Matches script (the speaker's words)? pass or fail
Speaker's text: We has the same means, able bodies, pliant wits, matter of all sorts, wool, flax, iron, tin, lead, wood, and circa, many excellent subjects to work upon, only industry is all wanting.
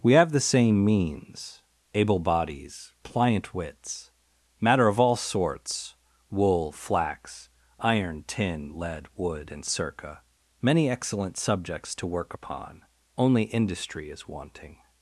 fail